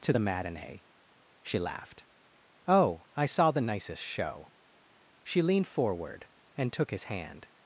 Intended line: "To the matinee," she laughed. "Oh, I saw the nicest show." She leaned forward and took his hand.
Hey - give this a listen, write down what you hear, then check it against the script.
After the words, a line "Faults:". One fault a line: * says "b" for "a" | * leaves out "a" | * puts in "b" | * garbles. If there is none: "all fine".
"To the matinee," she laughed. "Oh, I saw the nicest show." She leaned forward and took his hand.
Faults:
all fine